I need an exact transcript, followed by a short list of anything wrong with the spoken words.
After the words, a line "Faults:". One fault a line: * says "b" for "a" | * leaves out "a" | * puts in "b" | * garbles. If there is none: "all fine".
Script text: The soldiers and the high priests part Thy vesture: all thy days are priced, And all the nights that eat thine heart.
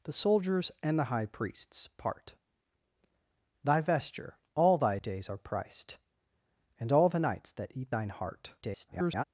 The soldiers and the high priests part Thy vesture: all thy days are priced, And all the nights that eat thine heart. [garbled]
Faults:
* garbles